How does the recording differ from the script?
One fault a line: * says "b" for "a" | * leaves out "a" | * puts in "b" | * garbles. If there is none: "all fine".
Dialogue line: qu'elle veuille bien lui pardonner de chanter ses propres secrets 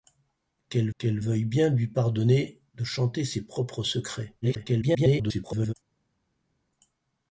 * puts in "qu'elle"
* garbles